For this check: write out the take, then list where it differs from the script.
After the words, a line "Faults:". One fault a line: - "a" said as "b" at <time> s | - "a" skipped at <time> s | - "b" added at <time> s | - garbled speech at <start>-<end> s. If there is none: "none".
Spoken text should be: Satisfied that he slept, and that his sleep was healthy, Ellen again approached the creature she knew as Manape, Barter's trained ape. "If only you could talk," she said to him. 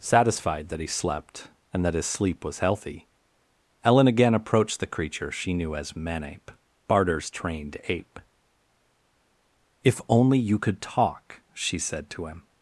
Satisfied that he slept, and that his sleep was healthy, Ellen again approached the creature she knew as Manape, Barter's trained ape. "If only you could talk," she said to him.
Faults:
none